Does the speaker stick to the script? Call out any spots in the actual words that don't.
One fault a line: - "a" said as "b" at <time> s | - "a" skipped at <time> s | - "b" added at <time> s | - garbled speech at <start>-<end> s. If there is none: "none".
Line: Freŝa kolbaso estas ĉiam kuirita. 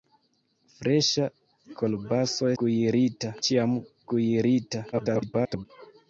- "estas" said as "kuirita" at 2.6 s
- garbled speech at 4.9-5.7 s